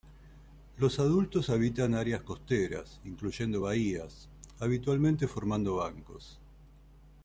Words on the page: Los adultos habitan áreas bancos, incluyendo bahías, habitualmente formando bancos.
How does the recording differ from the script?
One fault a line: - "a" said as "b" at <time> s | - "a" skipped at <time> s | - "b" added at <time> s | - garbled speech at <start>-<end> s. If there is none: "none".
- "bancos" said as "costeras" at 2.2 s